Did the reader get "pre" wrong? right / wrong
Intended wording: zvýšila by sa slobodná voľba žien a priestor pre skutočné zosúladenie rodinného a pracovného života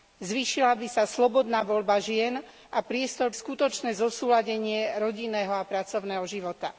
wrong